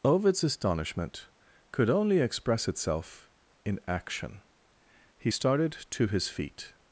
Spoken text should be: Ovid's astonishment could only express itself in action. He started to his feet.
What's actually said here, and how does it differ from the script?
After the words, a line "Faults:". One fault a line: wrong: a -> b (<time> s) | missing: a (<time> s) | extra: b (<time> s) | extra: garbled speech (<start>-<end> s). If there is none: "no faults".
Ovid's astonishment could only express itself in action. He started to his feet.
Faults:
no faults